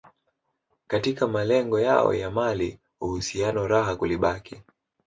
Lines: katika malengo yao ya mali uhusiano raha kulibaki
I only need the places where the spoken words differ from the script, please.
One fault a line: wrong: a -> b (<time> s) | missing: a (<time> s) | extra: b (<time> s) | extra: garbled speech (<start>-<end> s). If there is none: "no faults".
no faults